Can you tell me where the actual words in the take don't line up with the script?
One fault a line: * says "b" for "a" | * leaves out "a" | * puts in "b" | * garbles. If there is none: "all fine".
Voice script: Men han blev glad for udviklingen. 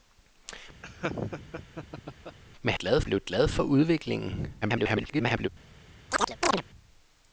* says "glad" for "han"
* garbles